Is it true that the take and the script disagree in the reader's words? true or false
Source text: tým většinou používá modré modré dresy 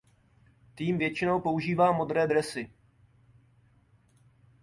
true